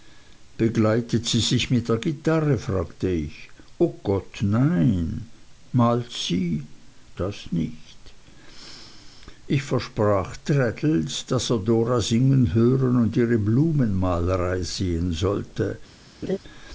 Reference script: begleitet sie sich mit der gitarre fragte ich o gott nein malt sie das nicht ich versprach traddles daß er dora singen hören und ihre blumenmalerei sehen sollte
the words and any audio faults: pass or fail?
fail